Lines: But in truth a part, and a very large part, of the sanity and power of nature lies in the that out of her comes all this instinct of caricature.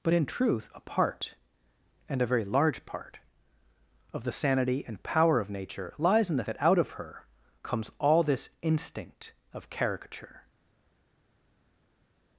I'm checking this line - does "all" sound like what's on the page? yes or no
yes